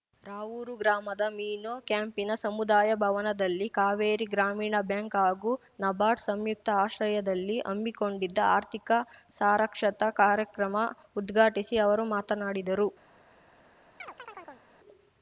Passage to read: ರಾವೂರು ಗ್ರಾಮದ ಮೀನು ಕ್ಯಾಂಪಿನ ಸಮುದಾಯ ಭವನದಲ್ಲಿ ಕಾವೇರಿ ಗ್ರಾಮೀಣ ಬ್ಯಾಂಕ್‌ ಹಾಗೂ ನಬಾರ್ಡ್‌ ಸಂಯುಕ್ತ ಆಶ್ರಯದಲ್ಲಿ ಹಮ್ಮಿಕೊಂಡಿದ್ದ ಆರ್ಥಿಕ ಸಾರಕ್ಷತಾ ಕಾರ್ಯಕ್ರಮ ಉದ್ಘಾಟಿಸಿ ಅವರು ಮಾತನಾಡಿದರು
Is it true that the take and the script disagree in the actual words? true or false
false